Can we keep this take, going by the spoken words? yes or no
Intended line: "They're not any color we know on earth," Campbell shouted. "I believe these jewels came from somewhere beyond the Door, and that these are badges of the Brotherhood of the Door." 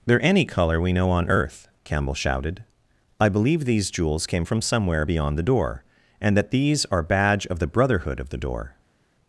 no